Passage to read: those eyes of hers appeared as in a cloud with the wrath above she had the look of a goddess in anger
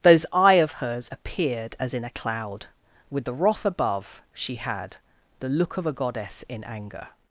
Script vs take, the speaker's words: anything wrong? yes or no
yes